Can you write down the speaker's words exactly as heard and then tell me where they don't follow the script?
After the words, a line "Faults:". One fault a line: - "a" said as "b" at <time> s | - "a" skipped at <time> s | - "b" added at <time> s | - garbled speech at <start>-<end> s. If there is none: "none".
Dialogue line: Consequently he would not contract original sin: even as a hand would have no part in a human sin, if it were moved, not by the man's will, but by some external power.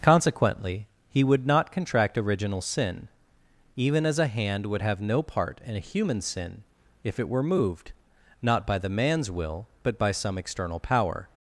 Consequently he would not contract original sin: even as a hand would have no part in a human sin, if it were moved, not by the man's will, but by some external power.
Faults:
none